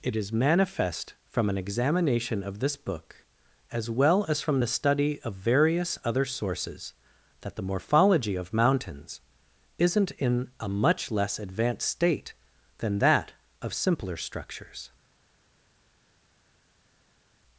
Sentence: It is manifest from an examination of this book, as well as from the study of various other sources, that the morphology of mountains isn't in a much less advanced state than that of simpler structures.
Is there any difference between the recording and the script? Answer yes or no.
no